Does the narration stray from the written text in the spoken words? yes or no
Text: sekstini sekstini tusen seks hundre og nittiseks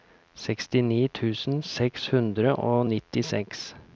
yes